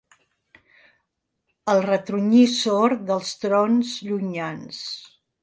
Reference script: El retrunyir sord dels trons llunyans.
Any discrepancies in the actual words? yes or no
no